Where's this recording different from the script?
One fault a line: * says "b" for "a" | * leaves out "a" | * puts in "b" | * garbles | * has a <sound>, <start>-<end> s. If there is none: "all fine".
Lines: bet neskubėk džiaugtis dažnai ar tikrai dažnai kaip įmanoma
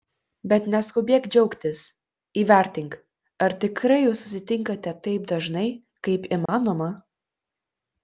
* says "įvertink" for "dažnai"
* puts in "jūs susitinkate taip"
* has a dropout, 6.5-6.5 s